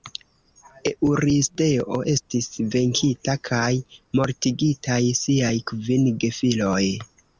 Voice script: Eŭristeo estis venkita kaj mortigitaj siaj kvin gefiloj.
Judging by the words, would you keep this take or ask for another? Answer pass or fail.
pass